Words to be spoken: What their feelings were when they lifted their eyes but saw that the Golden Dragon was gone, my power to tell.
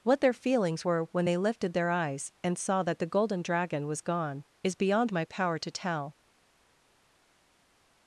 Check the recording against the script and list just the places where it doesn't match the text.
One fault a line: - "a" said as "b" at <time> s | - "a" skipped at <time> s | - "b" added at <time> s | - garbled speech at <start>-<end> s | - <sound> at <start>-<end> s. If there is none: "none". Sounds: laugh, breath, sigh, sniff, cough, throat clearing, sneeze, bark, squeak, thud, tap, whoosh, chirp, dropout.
- "but" said as "and" at 2.4 s
- "is beyond" added at 4.6 s